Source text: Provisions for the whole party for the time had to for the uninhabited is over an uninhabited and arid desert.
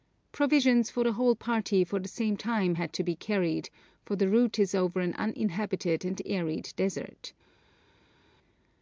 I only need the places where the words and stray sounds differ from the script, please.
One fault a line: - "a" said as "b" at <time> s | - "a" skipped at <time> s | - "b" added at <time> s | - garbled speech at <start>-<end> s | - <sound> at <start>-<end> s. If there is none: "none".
- "same" added at 2.1 s
- "be carried" added at 3.0 s
- "uninhabited" said as "route" at 4.3 s